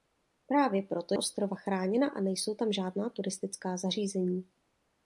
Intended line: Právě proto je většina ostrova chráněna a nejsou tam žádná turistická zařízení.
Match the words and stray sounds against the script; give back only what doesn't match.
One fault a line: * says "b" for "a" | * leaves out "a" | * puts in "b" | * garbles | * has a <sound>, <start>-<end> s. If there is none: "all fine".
* leaves out "je většina"